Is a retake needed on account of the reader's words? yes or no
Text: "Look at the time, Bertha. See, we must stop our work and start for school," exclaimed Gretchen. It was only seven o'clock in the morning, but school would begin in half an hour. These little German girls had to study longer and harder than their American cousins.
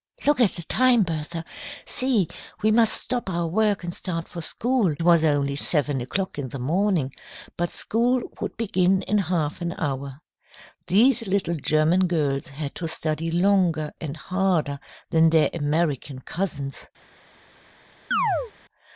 yes